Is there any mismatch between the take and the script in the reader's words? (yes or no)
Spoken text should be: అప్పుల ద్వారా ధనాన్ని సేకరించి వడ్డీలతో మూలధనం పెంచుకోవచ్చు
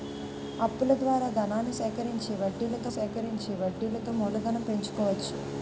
yes